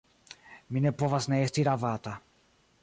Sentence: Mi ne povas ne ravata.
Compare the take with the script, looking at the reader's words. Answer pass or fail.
fail